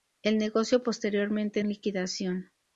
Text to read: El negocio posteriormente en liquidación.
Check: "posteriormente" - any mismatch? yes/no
no